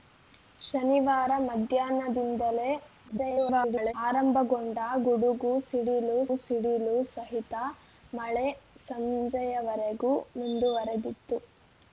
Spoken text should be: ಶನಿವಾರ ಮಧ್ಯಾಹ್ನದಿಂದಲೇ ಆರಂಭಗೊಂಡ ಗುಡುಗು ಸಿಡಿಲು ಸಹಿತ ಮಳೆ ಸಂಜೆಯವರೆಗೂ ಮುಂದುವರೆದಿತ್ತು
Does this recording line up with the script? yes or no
no